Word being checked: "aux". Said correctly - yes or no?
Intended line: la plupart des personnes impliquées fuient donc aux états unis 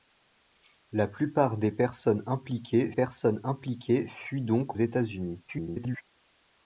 no